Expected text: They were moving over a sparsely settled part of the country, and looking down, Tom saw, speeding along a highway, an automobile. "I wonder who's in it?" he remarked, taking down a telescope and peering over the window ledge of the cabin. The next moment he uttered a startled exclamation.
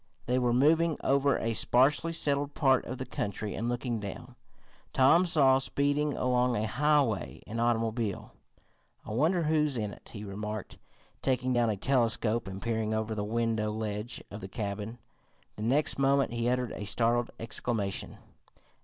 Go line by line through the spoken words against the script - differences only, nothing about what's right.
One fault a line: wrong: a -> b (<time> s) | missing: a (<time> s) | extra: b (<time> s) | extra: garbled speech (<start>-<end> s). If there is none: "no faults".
no faults